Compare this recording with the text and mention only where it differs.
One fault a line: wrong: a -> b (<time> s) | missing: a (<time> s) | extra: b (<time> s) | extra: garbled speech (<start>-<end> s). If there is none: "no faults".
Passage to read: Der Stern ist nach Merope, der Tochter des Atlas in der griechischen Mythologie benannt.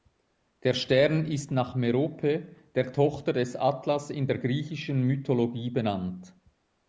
no faults